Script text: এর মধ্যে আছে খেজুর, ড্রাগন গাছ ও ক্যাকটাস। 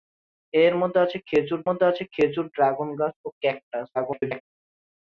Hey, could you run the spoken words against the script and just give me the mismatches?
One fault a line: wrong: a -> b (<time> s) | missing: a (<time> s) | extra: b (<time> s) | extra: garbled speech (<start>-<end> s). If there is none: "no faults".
extra: মধ্যে আছে খেজুর (1.7 s)
extra: garbled speech (3.9-4.4 s)